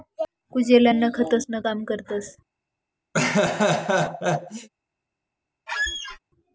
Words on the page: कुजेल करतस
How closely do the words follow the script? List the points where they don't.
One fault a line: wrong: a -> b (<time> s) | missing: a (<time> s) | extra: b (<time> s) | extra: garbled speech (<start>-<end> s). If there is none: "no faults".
extra: अन्न खतंसनं काम (0.9 s)